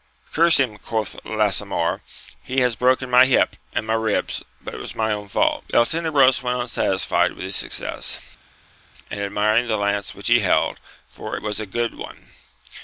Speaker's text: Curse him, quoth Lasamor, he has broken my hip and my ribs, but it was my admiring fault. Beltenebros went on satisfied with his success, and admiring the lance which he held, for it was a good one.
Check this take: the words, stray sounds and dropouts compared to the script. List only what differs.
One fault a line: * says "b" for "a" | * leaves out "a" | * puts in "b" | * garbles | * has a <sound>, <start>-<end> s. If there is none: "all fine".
* says "own" for "admiring"